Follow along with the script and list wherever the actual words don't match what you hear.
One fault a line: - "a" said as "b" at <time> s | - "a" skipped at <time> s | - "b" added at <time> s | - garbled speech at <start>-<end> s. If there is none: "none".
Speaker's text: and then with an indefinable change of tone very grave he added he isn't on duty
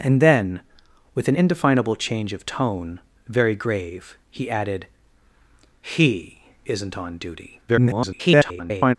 - garbled speech at 7.7-9.0 s